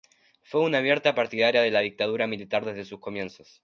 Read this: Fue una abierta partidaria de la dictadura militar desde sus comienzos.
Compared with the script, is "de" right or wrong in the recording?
right